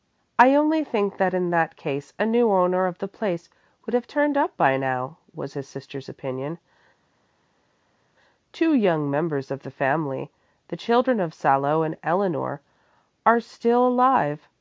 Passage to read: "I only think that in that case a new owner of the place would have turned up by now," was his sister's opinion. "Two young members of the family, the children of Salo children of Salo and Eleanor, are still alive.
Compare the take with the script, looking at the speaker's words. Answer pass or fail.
fail